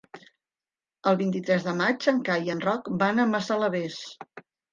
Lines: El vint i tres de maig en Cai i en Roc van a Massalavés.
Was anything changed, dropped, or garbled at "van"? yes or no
no